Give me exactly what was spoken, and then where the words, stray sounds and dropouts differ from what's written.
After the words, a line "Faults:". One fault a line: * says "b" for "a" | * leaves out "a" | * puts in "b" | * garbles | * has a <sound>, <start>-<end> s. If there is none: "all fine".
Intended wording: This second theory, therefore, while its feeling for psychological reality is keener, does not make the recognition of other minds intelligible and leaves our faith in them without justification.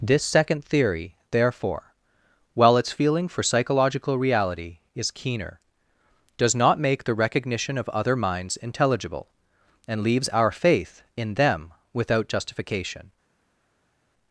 This second theory, therefore, while its feeling for psychological reality is keener, does not make the recognition of other minds intelligible and leaves our faith in them without justification.
Faults:
all fine